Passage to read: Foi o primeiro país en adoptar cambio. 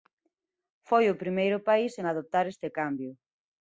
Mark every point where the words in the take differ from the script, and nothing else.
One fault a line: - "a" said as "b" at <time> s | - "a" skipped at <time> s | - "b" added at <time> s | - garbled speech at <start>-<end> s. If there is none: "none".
- "este" added at 2.5 s